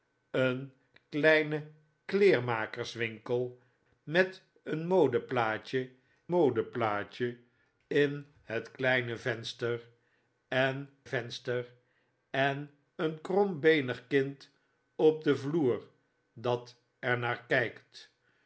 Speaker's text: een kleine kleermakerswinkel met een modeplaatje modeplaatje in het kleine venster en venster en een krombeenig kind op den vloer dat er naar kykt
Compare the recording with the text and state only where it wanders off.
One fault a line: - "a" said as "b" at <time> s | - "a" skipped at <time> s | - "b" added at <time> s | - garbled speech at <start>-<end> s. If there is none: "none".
none